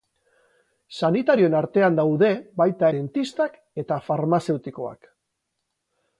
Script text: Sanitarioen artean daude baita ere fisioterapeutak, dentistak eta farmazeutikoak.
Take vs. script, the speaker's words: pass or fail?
fail